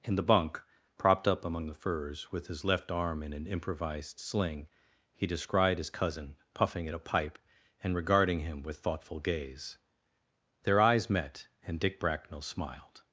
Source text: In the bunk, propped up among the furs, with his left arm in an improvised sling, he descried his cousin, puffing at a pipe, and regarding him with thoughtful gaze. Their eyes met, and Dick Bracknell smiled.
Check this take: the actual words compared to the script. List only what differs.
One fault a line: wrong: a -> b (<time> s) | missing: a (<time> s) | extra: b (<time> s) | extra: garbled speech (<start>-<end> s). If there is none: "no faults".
no faults